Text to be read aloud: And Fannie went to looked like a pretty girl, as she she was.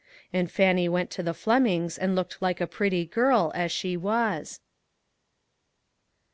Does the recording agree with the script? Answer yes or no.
no